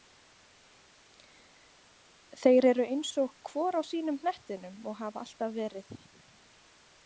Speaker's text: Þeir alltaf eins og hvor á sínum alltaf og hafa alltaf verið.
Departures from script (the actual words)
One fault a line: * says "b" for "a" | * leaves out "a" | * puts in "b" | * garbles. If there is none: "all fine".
* says "eru" for "alltaf"
* says "hnettinum" for "alltaf"